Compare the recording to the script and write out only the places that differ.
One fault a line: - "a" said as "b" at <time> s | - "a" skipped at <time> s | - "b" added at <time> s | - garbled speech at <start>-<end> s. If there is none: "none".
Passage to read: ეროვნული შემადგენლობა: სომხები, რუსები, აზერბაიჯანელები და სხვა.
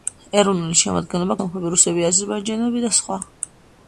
none